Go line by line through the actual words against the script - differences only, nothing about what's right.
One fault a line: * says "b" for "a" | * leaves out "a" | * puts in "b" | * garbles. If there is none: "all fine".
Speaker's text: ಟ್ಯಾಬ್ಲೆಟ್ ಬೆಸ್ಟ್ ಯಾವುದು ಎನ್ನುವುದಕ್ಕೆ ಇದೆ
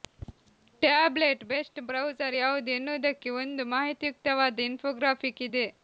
* puts in "ಬ್ರೌಸರ್"
* puts in "ಒಂದು ಮಾಹಿತಿಯುಕ್ತವಾದ ಇನ್ಫೋಗ್ರಾಫಿಕ್"